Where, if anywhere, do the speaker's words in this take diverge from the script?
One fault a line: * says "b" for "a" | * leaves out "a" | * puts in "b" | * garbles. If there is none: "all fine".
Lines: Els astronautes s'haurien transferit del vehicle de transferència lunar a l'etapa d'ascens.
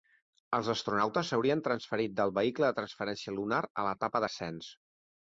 all fine